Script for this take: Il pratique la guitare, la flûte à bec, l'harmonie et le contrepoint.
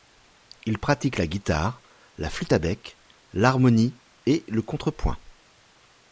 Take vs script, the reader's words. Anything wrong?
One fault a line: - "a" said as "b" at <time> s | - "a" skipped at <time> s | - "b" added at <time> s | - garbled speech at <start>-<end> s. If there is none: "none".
none